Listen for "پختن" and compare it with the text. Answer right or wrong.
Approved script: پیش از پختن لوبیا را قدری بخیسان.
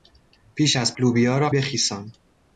wrong